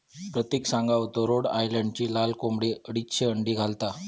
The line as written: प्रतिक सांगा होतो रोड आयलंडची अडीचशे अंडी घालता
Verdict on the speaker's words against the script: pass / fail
fail